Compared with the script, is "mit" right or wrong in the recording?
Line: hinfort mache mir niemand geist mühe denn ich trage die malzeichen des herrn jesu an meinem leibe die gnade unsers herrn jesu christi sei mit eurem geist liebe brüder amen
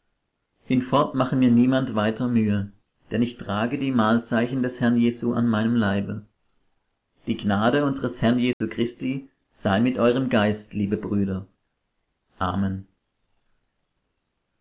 right